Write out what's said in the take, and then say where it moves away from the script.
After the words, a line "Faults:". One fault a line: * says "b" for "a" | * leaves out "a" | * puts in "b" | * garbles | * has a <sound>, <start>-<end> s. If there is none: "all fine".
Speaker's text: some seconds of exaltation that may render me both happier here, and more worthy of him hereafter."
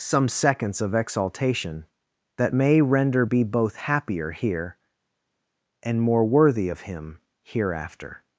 some seconds of exaltation that may render be both happier here, and more worthy of him hereafter."
Faults:
* says "be" for "me"